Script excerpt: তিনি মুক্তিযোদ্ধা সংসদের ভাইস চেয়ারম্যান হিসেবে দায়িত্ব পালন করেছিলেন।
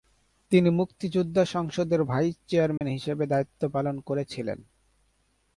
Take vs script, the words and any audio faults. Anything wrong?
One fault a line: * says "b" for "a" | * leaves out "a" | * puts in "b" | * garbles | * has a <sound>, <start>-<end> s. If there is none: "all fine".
* has a dropout, 2.8-2.8 s